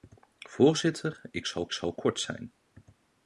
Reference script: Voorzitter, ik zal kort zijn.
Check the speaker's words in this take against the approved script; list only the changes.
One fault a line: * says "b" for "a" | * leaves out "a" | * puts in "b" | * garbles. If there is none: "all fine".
* puts in "zal"